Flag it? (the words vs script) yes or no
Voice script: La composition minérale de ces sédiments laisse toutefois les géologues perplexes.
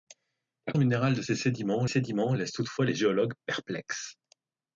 yes